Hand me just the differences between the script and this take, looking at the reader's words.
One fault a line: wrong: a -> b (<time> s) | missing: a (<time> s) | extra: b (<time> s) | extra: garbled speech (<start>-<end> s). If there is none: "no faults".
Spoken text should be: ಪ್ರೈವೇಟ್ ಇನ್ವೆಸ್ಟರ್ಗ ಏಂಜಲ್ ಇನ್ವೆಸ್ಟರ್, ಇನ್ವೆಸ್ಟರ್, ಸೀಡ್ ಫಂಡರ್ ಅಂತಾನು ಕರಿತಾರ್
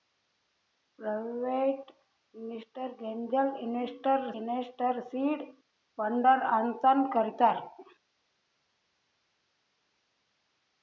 no faults